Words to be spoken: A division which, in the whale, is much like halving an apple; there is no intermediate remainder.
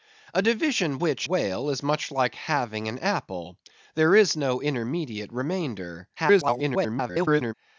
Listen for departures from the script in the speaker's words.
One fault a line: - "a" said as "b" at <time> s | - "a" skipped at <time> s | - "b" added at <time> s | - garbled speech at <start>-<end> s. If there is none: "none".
- "in the" skipped at 1.3 s
- garbled speech at 6.2-7.5 s